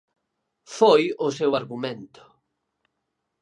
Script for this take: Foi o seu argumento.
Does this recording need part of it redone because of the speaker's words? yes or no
no